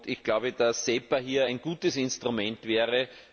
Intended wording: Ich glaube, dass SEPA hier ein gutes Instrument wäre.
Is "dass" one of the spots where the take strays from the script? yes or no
no